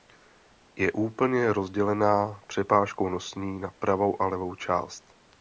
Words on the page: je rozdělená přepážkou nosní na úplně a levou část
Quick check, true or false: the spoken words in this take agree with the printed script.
false